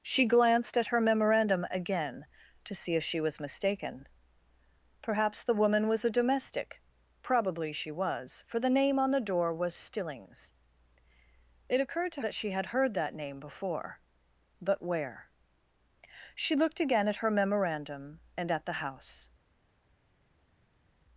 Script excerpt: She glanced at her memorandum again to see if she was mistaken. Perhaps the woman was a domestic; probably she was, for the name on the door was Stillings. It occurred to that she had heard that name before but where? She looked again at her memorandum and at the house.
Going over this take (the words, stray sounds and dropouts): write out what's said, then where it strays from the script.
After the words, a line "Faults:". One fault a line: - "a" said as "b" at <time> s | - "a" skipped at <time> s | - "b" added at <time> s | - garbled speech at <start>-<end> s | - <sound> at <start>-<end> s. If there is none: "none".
She glanced at her memorandum again to see if she was mistaken. Perhaps the woman was a domestic; probably she was, for the name on the door was Stillings. It occurred to that she had heard that name before but where? She looked again at her memorandum and at the house.
Faults:
none